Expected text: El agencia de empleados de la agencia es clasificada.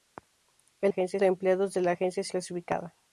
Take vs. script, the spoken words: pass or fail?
pass